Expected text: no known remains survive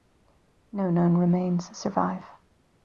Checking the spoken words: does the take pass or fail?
pass